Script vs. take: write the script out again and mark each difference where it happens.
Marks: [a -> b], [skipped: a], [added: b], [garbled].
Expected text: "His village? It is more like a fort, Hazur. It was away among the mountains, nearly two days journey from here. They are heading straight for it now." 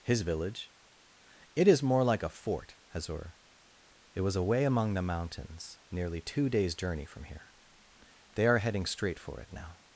"His village? It is more like a fort, Hazur. It was away among the mountains, nearly two days journey from here. They are heading straight for it now."